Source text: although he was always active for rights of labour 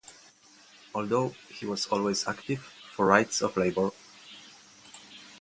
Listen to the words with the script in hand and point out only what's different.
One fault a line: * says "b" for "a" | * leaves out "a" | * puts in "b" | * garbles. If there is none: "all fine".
all fine